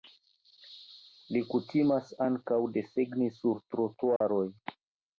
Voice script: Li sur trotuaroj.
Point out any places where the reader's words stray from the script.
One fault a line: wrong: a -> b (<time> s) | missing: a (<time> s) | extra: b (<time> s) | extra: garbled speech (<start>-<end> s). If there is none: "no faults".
extra: kutimas ankaŭ desegni (1.5 s)